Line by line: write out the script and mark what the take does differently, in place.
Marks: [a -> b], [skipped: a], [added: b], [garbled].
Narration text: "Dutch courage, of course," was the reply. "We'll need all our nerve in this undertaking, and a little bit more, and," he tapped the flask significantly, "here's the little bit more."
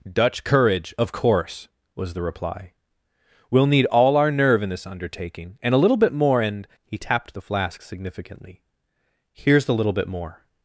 "Dutch courage, of course," was the reply. "We'll need all our nerve in this undertaking, and a little bit more, and," he tapped the flask significantly, "here's the little bit more."